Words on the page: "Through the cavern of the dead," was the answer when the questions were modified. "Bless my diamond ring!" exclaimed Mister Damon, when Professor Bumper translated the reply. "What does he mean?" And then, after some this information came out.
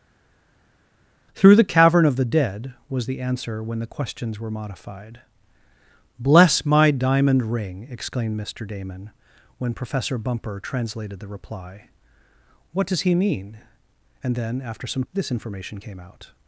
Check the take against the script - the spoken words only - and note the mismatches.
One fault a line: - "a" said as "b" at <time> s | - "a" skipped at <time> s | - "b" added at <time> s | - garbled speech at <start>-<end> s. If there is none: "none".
none